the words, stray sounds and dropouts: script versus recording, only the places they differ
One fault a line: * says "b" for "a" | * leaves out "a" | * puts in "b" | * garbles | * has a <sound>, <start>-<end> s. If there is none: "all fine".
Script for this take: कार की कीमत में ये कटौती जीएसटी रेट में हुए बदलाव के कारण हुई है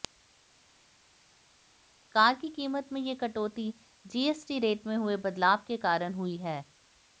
all fine